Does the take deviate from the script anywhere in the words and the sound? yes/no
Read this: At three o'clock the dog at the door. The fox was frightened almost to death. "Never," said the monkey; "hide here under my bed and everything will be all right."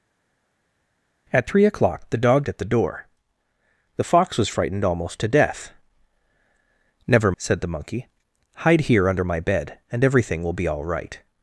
no